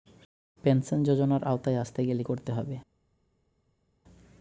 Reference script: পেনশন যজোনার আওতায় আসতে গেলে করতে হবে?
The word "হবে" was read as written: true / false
true